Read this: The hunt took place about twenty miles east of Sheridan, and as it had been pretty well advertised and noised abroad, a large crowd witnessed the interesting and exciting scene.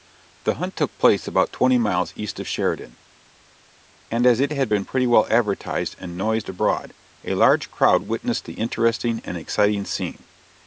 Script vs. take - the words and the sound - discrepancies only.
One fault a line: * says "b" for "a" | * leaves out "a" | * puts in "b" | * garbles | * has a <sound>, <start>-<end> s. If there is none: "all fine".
all fine